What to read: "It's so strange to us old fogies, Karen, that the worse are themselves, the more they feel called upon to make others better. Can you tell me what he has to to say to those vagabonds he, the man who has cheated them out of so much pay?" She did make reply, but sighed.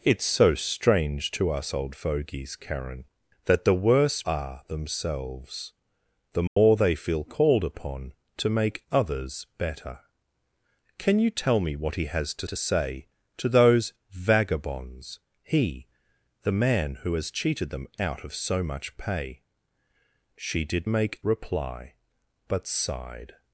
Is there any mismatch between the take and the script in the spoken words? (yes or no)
no